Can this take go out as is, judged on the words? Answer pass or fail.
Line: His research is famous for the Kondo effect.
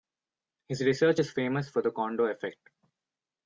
pass